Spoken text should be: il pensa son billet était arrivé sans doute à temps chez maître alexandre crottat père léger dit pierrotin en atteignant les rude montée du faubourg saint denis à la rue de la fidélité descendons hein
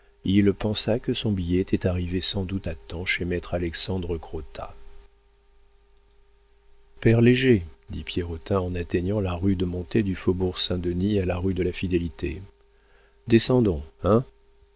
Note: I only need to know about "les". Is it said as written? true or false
false